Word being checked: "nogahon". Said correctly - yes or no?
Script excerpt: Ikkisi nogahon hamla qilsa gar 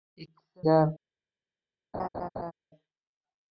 no